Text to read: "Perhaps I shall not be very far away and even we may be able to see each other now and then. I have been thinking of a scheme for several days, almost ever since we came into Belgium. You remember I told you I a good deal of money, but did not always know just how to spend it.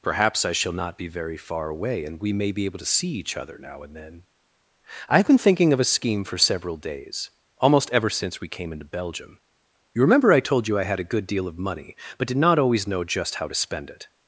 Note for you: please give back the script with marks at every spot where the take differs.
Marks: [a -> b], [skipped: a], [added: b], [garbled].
"Perhaps I shall not be very far away and [skipped: even] we may be able to see each other now and then. I have been thinking of a scheme for several days, almost ever since we came into Belgium. You remember I told you I [added: had] a good deal of money, but did not always know just how to spend it.